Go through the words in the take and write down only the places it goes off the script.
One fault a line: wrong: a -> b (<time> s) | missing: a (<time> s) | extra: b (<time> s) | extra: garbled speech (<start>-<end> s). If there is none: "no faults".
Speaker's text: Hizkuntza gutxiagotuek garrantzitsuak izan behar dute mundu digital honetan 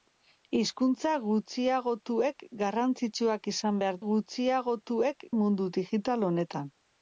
wrong: dute -> gutxiagotuek (4.1 s)